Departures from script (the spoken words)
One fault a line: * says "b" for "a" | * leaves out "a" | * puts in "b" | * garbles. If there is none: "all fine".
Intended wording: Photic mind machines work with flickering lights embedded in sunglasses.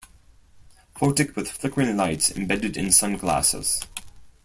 * leaves out "mind machines work"